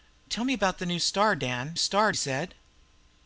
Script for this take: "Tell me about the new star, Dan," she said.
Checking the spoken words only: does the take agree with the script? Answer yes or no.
no